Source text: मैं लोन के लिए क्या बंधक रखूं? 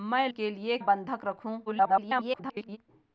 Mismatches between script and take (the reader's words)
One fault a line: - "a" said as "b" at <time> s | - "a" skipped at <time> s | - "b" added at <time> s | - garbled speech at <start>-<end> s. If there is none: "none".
- "लोन" skipped at 0.3 s
- "क्या" skipped at 0.8 s
- garbled speech at 1.7-2.8 s